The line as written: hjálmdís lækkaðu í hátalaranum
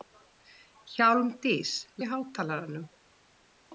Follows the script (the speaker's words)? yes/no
no